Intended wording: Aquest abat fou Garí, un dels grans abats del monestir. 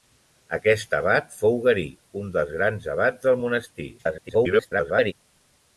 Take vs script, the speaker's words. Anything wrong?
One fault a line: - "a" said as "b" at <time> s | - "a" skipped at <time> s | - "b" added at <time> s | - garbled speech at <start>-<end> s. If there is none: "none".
- garbled speech at 4.0-5.1 s